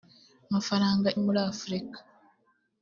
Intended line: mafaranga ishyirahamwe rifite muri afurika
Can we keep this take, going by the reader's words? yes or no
no